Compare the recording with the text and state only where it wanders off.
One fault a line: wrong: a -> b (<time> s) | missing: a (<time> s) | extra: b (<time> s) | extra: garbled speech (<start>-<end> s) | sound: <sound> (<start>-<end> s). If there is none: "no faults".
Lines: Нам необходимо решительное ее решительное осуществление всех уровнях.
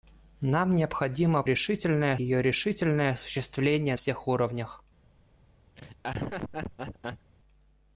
sound: laugh (5.8-7.3 s)